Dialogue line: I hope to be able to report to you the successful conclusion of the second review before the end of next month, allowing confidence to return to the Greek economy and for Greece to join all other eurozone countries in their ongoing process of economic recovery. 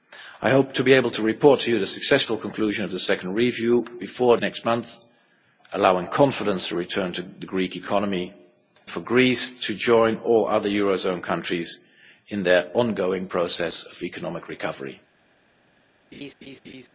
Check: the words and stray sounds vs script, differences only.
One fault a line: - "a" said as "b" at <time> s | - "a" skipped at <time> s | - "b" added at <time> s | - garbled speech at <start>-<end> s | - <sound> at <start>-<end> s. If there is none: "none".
- "the end of" skipped at 4.4 s
- "and" skipped at 8.3 s
- laugh at 16.1-16.9 s